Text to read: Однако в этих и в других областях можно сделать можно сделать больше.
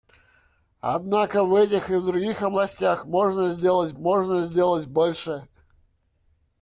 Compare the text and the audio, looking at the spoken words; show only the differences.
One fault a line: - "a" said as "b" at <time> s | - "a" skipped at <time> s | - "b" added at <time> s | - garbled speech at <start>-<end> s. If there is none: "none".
none